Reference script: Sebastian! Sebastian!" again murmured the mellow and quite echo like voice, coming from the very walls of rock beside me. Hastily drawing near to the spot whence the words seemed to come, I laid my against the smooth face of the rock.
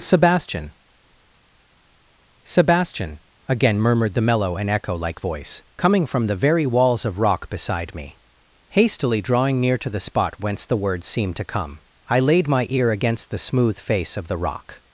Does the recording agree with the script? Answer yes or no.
no